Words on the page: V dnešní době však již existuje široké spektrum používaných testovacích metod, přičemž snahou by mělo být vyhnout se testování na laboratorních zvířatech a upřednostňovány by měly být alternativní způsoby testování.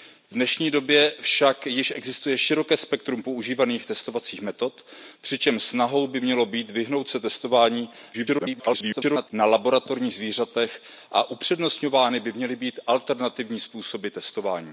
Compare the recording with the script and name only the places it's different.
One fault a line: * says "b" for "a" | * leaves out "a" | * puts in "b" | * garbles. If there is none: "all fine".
* garbles